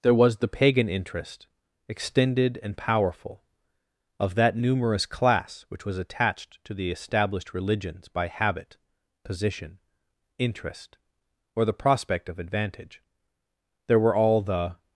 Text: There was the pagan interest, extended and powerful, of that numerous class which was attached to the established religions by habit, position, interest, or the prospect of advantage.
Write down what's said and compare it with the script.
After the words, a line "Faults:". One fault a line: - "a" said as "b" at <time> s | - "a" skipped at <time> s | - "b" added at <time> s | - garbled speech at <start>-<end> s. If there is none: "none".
There was the pagan interest, extended and powerful, of that numerous class which was attached to the established religions by habit, position, interest, or the prospect of advantage. There were all the
Faults:
- "There were all the" added at 13.9 s